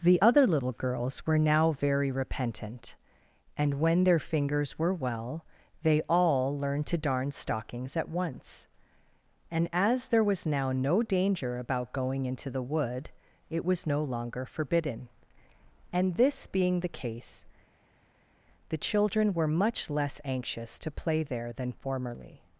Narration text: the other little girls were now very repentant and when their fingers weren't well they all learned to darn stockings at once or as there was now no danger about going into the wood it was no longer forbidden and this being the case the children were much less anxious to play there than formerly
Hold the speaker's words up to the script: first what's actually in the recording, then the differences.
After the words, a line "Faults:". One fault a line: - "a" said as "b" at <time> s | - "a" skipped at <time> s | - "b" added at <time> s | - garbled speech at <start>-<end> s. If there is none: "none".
the other little girls were now very repentant and when their fingers were well they all learned to darn stockings at once and as there was now no danger about going into the wood it was no longer forbidden and this being the case the children were much less anxious to play there than formerly
Faults:
- "weren't" said as "were" at 4.8 s
- "or" said as "and" at 9.5 s